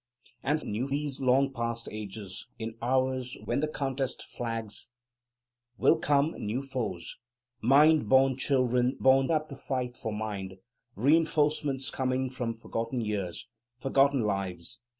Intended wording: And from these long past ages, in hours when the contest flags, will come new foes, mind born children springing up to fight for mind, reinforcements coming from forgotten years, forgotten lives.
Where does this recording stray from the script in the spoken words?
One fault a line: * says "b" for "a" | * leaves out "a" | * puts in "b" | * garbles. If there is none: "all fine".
* says "new" for "from"
* says "born" for "springing"